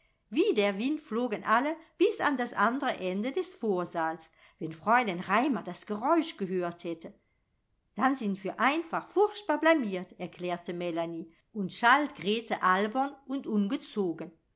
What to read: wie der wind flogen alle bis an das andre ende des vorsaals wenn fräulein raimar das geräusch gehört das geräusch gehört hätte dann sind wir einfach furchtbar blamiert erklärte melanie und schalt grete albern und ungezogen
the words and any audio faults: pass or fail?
fail